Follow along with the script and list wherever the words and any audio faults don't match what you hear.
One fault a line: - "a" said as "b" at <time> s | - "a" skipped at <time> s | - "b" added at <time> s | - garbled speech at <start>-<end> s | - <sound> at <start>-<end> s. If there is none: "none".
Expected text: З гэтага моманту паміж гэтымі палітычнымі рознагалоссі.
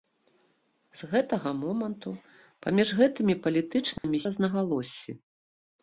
- dropout at 4.0-4.0 s